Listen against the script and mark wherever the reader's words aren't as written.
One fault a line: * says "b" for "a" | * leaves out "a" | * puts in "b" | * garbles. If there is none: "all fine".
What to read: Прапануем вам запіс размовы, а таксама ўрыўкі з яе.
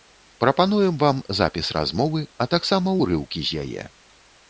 all fine